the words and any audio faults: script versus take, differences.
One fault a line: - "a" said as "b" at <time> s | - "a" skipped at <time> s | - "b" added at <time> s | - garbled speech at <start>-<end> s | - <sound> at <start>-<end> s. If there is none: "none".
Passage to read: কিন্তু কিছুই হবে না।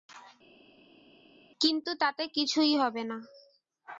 - "তাতে" added at 2.0 s